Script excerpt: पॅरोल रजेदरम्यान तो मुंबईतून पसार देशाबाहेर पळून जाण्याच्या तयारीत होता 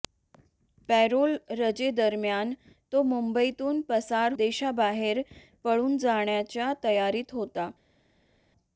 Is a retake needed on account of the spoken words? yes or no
no